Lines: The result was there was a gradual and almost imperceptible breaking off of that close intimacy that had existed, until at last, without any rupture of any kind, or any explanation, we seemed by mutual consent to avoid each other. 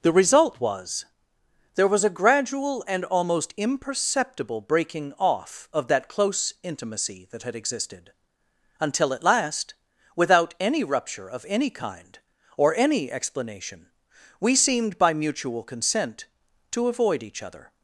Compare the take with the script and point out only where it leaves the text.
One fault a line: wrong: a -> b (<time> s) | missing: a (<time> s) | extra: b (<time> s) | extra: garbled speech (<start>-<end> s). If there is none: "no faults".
no faults